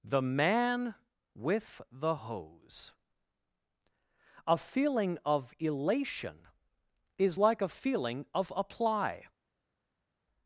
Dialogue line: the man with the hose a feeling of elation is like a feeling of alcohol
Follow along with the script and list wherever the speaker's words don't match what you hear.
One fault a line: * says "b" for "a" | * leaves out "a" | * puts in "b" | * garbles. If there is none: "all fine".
* says "apply" for "alcohol"